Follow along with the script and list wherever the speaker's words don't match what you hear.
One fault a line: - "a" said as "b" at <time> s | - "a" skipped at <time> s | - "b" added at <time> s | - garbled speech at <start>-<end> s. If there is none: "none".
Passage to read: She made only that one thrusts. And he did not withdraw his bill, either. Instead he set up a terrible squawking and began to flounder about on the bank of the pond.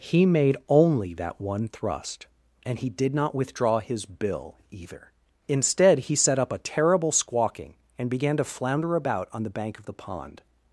- "She" said as "He" at 0.0 s
- "thrusts" said as "thrust" at 1.7 s